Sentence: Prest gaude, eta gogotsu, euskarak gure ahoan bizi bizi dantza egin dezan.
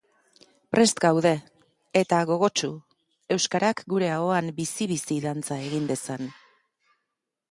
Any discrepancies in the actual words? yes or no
no